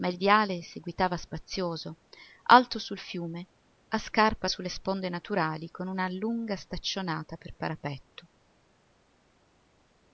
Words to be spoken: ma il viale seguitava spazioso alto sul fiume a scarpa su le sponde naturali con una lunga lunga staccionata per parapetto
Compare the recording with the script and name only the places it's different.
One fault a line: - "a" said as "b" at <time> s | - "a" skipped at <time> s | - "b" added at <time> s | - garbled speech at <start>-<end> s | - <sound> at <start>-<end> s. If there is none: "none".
- "lunga" skipped at 6.5 s